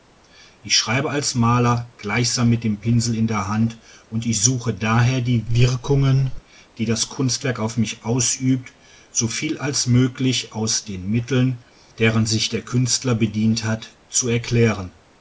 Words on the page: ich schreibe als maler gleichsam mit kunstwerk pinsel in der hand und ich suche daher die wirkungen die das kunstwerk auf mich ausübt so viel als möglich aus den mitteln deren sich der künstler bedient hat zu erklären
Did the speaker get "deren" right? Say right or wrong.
right